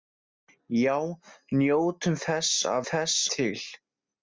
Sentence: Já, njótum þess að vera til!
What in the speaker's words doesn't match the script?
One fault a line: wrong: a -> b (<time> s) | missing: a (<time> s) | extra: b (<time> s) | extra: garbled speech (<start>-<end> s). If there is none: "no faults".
wrong: vera -> þess (2.9 s)